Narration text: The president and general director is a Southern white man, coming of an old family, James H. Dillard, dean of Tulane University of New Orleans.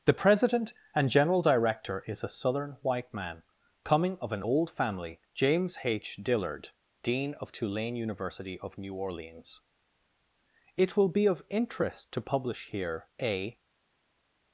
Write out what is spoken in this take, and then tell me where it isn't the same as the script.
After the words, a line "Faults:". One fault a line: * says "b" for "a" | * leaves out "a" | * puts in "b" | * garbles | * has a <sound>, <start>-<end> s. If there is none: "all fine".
The president and general director is a Southern white man, coming of an old family, James H. Dillard, dean of Tulane University of New Orleans. It will be of interest to publish here a
Faults:
* puts in "It will be of interest to publish here a"